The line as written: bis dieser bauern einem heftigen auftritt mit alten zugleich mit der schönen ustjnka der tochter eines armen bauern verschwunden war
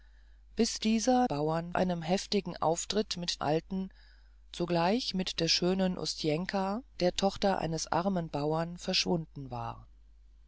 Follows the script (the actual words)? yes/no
yes